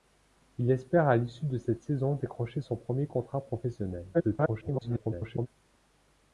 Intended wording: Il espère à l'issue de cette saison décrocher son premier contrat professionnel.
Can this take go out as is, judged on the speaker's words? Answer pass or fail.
fail